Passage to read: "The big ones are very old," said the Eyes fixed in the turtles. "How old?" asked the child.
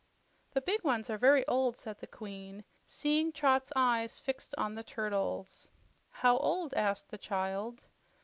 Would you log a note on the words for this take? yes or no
yes